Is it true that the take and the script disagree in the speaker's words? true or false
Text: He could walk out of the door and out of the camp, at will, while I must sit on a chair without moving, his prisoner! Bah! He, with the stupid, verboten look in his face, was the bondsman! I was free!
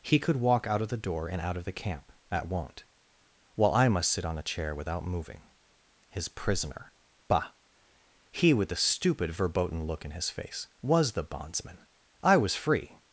true